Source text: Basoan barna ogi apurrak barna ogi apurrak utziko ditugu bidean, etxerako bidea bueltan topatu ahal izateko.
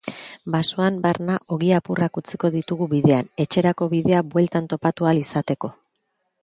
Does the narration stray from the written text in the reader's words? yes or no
yes